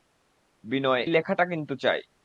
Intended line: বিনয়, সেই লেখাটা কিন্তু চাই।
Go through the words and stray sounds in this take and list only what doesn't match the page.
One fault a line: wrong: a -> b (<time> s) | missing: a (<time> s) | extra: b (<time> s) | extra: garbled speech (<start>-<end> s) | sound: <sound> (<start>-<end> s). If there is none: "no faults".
missing: সেই (1.0 s)